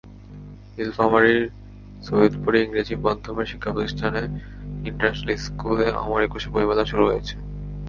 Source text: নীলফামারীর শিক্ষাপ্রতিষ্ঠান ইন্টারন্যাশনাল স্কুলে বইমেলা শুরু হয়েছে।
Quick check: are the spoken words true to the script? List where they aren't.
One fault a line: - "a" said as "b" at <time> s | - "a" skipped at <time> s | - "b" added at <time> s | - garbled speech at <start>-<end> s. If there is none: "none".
- "সৈয়দপুরে ইংরেজি মাধ্যমের" added at 2.1 s
- "অমর একুশে" added at 6.0 s